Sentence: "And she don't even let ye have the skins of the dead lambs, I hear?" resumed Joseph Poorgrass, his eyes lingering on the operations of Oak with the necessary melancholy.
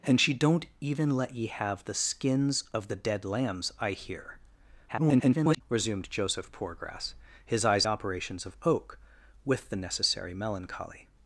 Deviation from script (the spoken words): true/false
true